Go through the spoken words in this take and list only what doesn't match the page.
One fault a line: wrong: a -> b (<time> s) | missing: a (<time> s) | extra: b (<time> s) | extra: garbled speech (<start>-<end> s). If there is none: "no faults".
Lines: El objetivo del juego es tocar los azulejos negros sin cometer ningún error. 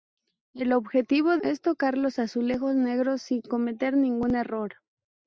missing: del juego (1.4 s)